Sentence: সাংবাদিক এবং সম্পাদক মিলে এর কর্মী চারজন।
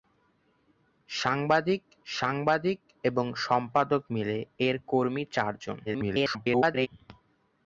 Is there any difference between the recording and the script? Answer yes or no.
yes